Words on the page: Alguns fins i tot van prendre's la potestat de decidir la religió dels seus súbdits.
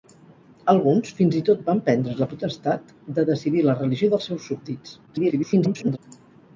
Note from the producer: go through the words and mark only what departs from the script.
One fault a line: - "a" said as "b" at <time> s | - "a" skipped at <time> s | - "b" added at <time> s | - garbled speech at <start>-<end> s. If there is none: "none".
- garbled speech at 5.1-6.0 s